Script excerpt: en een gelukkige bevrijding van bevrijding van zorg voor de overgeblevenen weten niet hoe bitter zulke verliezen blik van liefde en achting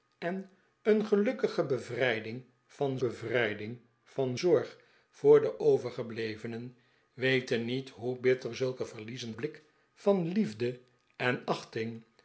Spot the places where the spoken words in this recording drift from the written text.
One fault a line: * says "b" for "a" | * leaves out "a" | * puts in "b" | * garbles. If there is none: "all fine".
all fine